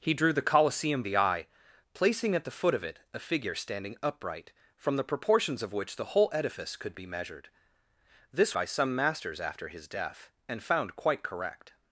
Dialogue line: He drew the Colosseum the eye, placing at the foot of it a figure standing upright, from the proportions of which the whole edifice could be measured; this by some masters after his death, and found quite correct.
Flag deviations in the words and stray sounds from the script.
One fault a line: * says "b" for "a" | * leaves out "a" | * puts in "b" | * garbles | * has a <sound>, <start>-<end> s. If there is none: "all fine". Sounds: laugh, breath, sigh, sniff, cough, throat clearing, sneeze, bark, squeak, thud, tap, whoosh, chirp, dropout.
all fine